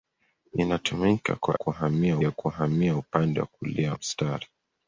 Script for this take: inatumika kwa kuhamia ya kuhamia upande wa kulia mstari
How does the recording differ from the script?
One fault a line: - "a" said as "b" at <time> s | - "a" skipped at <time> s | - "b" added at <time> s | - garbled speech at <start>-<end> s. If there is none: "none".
none